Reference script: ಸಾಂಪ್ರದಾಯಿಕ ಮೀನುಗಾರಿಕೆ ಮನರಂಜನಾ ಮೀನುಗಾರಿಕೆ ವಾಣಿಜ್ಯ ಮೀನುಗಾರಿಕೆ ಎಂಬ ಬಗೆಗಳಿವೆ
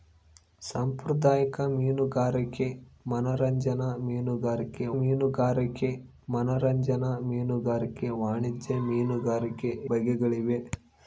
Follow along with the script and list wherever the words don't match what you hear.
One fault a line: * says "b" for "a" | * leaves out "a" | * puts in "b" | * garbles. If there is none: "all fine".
* puts in "ಮೀನುಗಾರಿಕೆ ಮನರಂಜನಾ ಮೀನುಗಾರಿಕೆ"
* leaves out "ಎಂಬ"